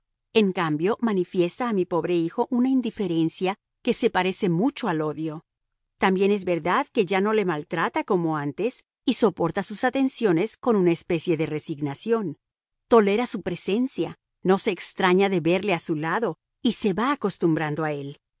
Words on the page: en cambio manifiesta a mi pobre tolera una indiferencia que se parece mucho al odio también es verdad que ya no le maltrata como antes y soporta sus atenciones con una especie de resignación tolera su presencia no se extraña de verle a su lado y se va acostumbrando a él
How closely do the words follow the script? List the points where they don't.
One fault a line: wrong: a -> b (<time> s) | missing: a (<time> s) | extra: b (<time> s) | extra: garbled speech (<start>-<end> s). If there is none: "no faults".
wrong: tolera -> hijo (2.1 s)